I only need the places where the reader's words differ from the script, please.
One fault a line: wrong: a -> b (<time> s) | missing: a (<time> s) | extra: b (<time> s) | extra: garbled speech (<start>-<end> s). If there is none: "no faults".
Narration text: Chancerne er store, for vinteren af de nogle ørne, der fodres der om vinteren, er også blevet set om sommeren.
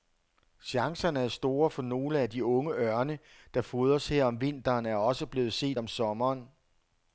wrong: vinteren -> nogle (1.8 s)
wrong: nogle -> unge (2.5 s)
wrong: der -> her (4.1 s)